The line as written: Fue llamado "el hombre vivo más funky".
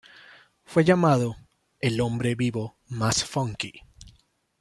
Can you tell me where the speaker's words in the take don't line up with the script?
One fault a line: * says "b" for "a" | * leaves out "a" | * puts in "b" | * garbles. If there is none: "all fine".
all fine